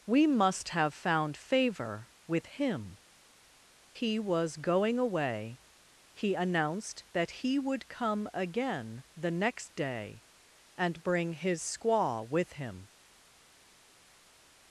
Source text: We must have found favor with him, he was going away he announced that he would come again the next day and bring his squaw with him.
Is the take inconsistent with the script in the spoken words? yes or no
no